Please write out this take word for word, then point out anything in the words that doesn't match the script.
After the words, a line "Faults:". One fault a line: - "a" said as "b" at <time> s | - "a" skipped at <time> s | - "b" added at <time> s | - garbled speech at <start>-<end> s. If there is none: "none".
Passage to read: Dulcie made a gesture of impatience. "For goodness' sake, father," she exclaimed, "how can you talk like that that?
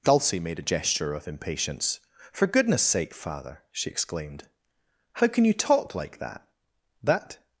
Dulcie made a gesture of impatience. "For goodness' sake, father," she exclaimed, "how can you talk like that that?
Faults:
none